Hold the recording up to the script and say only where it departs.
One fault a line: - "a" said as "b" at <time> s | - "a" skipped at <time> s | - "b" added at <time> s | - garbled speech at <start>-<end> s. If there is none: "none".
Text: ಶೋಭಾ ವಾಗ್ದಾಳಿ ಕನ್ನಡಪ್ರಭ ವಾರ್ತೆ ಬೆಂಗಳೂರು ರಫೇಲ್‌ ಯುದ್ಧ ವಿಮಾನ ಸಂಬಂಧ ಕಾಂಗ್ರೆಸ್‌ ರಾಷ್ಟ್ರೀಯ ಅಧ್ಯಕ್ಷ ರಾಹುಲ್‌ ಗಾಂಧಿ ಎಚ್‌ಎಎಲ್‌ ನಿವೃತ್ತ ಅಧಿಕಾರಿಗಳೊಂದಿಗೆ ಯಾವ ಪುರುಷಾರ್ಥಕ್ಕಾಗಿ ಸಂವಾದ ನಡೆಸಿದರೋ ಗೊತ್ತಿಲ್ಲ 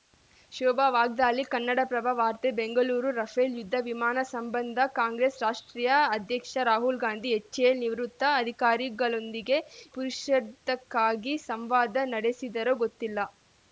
- "ಯಾವ" skipped at 9.6 s